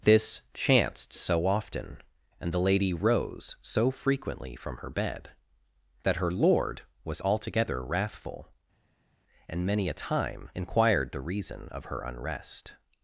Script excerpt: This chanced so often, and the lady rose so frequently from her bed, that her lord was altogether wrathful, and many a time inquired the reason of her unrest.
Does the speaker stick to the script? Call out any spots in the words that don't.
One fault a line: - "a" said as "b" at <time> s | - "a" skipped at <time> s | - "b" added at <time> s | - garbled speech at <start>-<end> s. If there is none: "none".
none